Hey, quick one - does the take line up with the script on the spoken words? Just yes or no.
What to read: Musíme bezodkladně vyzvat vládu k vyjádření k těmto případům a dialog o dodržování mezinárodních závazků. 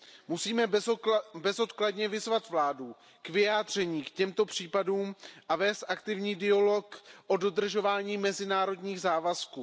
no